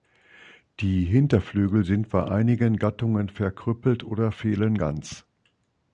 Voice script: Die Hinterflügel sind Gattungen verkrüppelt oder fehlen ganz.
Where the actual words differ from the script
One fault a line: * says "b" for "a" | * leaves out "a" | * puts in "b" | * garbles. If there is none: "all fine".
* puts in "bei einigen"